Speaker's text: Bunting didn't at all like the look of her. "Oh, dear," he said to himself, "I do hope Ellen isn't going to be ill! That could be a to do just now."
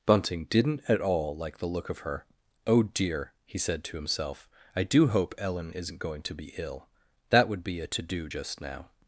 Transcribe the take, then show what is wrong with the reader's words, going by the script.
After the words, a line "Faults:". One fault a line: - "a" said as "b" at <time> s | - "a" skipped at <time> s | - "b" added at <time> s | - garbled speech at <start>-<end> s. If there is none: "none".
Bunting didn't at all like the look of her. "Oh, dear," he said to himself, "I do hope Ellen isn't going to be ill! That would be a to do just now."
Faults:
- "could" said as "would" at 7.5 s